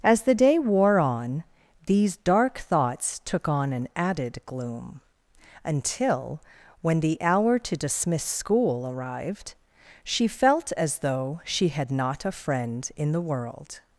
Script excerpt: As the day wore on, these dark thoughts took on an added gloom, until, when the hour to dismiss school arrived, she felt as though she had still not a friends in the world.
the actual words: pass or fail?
fail